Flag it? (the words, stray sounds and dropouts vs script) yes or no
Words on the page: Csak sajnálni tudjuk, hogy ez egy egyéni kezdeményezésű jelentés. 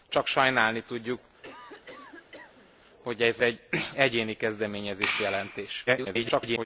yes